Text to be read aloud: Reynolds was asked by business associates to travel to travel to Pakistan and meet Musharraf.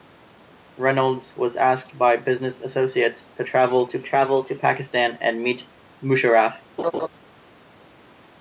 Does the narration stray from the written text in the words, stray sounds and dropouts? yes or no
yes